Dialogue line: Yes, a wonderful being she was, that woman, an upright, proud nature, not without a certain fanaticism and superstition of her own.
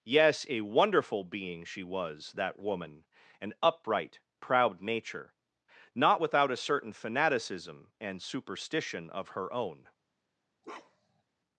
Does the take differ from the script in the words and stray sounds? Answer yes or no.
yes